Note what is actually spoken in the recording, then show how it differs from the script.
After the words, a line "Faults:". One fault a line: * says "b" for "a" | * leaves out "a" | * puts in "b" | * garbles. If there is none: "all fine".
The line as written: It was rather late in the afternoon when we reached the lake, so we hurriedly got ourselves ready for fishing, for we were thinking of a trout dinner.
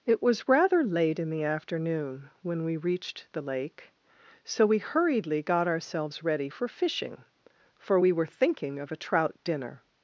It was rather late in the afternoon when we reached the lake, so we hurriedly got ourselves ready for fishing, for we were thinking of a trout dinner.
Faults:
all fine